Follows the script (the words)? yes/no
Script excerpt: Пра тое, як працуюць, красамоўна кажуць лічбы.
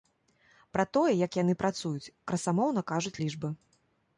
no